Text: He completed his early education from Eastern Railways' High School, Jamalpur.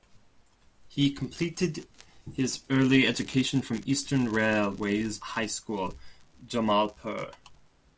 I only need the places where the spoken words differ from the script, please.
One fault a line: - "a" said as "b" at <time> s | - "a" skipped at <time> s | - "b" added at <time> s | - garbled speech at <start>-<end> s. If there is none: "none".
none